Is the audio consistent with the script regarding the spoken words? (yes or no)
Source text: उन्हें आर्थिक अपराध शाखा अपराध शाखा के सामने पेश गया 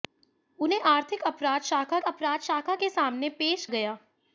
yes